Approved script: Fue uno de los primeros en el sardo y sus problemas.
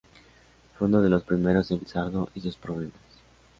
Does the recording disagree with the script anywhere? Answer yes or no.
no